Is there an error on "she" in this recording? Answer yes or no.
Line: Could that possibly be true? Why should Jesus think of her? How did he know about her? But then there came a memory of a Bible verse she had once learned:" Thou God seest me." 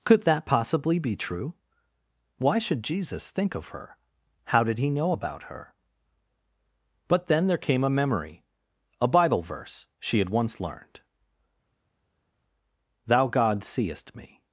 no